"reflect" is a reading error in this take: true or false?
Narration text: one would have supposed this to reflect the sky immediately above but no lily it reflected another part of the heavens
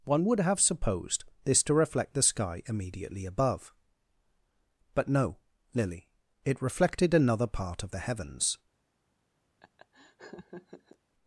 false